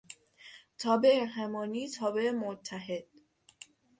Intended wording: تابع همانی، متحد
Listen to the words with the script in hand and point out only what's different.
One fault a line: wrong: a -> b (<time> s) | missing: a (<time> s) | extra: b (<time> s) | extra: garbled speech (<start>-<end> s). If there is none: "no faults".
extra: تابع (1.9 s)